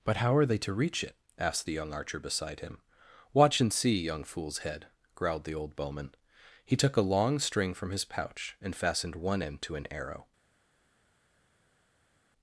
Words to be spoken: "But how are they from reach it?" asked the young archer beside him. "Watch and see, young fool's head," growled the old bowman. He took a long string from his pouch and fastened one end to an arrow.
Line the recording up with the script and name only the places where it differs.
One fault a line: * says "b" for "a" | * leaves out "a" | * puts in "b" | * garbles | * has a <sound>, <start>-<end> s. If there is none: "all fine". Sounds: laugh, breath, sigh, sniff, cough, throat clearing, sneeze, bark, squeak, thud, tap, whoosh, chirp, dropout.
* says "to" for "from"